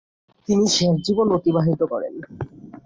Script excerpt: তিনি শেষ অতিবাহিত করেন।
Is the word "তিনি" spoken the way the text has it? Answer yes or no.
yes